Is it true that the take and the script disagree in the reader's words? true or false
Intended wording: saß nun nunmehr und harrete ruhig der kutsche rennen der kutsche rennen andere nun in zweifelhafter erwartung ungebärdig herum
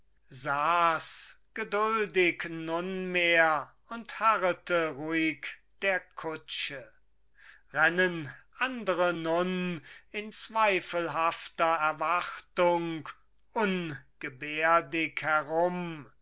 true